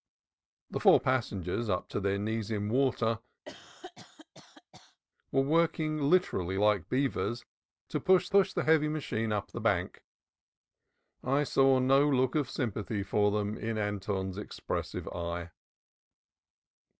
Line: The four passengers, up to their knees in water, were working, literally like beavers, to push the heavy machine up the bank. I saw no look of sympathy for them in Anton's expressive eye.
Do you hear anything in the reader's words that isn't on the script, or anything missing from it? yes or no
yes